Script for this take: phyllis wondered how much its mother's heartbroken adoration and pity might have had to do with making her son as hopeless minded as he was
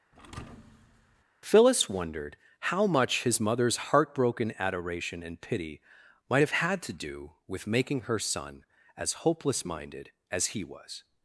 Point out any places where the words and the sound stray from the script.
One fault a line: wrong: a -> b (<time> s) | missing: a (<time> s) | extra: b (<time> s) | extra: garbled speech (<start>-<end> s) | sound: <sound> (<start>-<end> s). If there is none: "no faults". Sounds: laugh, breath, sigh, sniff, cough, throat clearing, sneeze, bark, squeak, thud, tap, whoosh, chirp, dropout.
sound: thud (0.1-1.2 s)
wrong: its -> his (3.2 s)